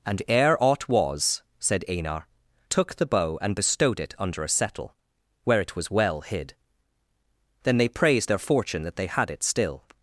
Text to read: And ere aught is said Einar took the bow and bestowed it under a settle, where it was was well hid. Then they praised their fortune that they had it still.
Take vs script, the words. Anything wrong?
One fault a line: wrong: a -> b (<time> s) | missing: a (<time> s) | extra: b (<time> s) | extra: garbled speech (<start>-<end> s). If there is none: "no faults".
wrong: is -> was (0.9 s)
missing: was (5.9 s)